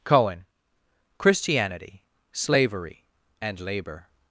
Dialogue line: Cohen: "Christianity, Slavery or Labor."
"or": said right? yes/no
no